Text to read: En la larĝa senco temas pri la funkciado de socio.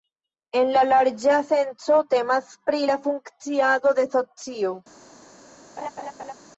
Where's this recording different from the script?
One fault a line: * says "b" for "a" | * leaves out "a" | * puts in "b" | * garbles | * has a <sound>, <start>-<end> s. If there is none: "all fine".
* has a laugh, 5.8-6.3 s